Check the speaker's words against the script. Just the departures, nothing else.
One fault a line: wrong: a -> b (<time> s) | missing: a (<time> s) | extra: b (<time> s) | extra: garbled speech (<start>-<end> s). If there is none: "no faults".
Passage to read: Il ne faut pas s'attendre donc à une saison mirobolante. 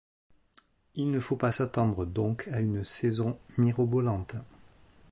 no faults